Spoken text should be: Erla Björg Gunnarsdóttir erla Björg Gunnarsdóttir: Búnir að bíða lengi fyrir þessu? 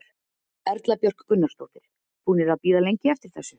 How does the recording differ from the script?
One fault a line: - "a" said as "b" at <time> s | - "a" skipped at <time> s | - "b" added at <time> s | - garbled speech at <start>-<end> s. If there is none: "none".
- "erla Björg Gunnarsdóttir" skipped at 1.8 s
- "fyrir" said as "eftir" at 3.2 s